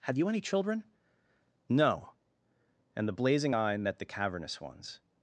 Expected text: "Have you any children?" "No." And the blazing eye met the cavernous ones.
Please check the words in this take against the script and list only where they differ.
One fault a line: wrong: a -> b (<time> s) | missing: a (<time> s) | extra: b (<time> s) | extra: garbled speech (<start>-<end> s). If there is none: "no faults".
no faults